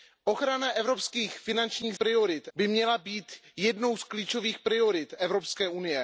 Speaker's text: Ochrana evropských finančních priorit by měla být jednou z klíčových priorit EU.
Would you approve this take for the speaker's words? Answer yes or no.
yes